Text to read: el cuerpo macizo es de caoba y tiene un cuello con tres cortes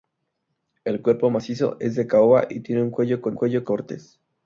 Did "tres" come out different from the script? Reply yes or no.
yes